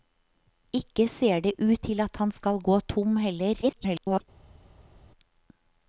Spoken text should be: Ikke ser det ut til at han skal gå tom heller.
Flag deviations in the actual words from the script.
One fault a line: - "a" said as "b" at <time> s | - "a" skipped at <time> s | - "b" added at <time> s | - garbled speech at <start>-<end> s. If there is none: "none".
- garbled speech at 3.6-4.2 s